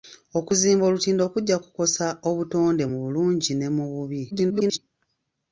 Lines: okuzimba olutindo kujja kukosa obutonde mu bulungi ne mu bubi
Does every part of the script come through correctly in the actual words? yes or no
no